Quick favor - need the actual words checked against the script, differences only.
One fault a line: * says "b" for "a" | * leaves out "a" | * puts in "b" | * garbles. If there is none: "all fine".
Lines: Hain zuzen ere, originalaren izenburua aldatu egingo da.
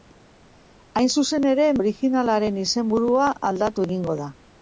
all fine